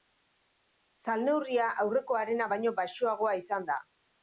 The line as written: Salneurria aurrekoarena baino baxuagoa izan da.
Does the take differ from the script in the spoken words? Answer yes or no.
no